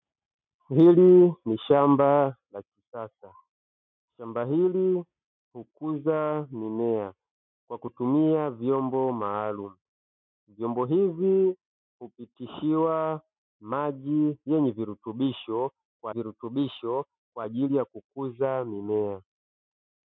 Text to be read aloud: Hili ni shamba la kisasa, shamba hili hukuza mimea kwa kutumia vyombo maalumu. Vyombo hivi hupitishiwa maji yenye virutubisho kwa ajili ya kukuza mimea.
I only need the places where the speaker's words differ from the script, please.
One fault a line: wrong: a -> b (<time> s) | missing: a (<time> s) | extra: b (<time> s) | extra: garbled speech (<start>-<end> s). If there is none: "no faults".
extra: virutubisho kwa (16.1 s)